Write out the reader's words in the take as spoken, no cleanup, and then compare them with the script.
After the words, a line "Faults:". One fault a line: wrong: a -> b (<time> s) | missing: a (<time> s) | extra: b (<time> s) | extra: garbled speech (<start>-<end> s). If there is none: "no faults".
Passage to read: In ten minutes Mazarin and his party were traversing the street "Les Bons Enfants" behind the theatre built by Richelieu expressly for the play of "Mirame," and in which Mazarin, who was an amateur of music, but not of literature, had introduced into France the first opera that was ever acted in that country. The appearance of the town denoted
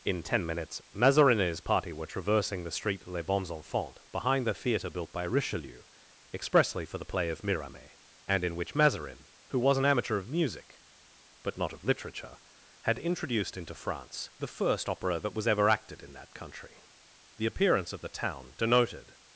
In ten minutes Mazarin and his party were traversing the street "Les Bons Enfants" behind the theatre built by Richelieu expressly for the play of "Mirame," and in which Mazarin, who was an amateur of music, but not of literature, had introduced into France the first opera that was ever acted in that country. The appearance of the town denoted
Faults:
no faults